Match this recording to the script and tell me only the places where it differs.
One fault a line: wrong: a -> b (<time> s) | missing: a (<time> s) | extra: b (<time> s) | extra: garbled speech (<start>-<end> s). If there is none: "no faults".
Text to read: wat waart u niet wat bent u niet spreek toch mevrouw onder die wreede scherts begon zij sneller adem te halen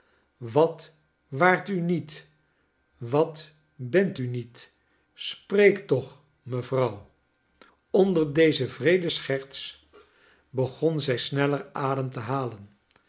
wrong: die -> deze (8.3 s)